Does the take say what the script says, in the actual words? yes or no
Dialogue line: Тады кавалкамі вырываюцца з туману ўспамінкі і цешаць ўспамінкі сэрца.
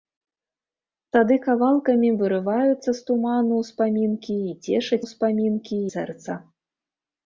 yes